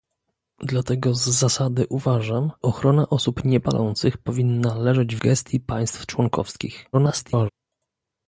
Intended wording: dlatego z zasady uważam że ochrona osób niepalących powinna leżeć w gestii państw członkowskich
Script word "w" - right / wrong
wrong